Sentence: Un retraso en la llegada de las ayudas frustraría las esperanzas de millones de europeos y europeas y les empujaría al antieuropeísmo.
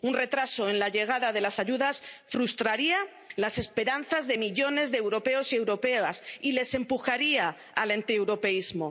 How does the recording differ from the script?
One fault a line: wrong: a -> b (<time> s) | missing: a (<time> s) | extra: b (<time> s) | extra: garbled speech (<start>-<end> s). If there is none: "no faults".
no faults